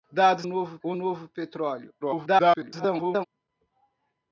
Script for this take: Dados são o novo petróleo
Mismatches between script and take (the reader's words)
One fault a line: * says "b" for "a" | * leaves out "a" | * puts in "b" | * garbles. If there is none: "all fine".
* says "novo" for "são"
* garbles